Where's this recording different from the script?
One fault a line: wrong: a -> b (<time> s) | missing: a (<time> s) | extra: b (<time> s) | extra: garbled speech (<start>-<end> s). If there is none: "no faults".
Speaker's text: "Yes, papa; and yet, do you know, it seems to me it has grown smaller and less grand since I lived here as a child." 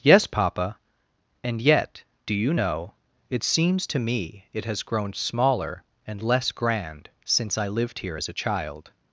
no faults